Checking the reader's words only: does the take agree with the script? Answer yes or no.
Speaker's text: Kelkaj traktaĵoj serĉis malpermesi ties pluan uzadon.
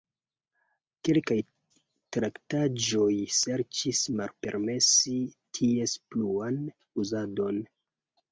yes